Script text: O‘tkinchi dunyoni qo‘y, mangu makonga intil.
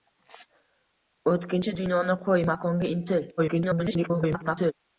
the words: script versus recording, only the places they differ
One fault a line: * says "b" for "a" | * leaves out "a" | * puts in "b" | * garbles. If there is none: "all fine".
* leaves out "mangu"
* garbles